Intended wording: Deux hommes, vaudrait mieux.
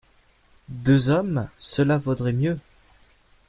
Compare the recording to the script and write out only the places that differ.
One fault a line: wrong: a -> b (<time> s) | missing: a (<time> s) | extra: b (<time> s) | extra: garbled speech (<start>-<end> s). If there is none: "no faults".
extra: cela (1.6 s)